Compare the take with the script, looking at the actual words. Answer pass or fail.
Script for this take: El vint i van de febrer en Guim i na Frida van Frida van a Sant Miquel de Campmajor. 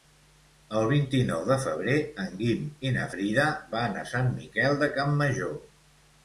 fail